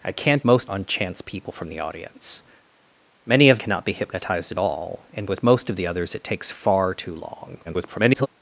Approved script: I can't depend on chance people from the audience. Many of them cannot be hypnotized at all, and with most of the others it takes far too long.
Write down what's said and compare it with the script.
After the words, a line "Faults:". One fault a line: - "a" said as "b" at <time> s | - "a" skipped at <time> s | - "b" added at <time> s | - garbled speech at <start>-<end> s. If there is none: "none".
I can't most on chance people from the audience. Many of cannot be hypnotized at all, and with most of the others it takes far too long. [garbled]
Faults:
- "depend" said as "most" at 0.4 s
- "them" skipped at 3.6 s
- garbled speech at 7.6-8.3 s